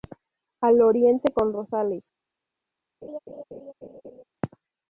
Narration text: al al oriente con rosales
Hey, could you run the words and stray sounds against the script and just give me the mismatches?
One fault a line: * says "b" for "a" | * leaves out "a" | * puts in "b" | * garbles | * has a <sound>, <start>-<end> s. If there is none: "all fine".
* leaves out "al"
* has a laugh, 3.0-4.2 s